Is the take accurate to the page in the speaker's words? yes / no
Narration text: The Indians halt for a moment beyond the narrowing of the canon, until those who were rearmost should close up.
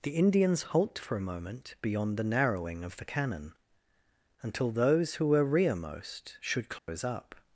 yes